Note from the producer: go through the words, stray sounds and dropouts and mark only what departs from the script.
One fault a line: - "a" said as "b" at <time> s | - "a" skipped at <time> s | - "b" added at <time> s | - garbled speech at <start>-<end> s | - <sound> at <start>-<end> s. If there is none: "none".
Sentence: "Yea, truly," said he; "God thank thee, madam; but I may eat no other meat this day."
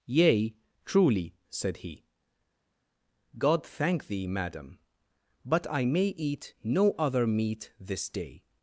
none